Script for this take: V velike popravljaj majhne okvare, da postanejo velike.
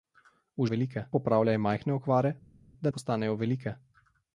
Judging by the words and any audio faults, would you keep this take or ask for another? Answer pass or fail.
pass